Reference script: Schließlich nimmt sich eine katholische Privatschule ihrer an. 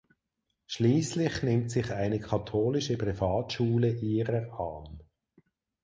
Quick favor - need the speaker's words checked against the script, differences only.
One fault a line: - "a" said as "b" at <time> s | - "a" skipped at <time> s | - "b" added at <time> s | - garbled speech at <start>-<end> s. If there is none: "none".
none